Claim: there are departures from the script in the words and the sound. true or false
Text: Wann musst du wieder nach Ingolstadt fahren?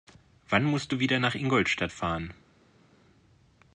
false